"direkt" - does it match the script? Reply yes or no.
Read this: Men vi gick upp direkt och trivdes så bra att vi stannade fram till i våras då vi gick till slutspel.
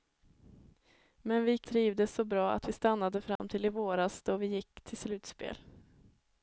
no